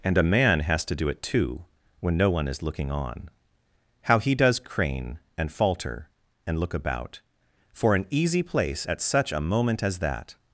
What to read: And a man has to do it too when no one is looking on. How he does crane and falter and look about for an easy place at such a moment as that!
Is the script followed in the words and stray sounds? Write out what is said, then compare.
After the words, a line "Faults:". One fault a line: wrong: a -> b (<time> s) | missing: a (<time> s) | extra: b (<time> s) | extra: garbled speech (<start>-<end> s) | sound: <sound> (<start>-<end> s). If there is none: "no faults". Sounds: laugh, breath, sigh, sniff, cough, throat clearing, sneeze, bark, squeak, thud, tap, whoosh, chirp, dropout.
And a man has to do it too when no one is looking on. How he does crane and falter and look about for an easy place at such a moment as that!
Faults:
no faults